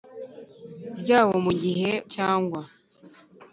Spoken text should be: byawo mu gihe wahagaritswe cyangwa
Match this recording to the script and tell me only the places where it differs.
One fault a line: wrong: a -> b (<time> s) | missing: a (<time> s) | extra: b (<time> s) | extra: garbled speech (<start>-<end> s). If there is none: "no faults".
missing: wahagaritswe (1.9 s)